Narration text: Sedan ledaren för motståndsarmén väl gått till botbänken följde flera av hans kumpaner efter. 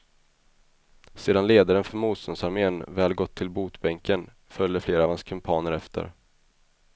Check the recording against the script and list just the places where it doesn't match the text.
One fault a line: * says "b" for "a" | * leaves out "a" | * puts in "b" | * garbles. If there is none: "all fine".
all fine